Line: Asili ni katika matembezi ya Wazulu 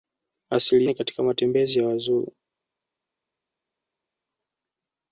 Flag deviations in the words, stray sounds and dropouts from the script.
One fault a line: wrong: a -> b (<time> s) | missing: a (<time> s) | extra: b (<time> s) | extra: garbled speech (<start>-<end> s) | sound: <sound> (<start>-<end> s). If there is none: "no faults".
no faults